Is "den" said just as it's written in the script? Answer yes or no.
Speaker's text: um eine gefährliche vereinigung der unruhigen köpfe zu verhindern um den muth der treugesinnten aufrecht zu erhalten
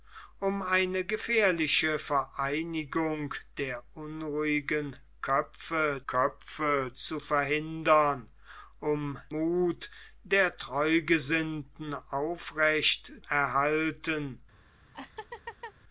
no